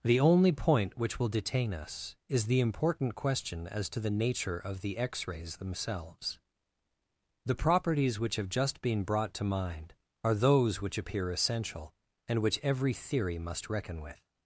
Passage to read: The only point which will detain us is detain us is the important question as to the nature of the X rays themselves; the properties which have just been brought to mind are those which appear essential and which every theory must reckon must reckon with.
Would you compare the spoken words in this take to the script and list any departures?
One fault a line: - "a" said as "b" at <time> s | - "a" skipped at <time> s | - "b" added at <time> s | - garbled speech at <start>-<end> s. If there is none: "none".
- "detain us is" skipped at 2.5 s
- "must reckon" skipped at 14.0 s